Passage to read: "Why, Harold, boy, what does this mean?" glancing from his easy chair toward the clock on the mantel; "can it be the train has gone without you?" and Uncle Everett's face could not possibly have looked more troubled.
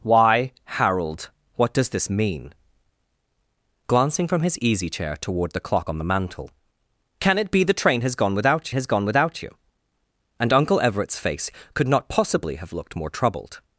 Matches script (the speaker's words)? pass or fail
fail